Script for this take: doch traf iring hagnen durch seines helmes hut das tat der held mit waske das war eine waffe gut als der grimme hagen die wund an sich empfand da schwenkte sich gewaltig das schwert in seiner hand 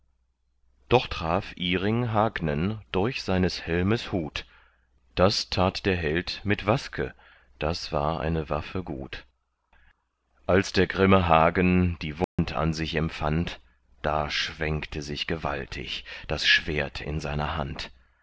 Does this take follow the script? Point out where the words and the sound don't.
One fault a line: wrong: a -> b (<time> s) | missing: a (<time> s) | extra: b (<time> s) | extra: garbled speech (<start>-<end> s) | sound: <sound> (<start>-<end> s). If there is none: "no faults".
sound: dropout (12.2-12.4 s)